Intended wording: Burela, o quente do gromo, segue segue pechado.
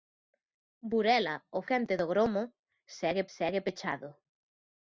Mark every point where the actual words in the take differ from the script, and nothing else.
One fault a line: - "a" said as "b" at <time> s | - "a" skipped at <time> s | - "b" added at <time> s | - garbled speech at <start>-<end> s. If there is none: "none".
none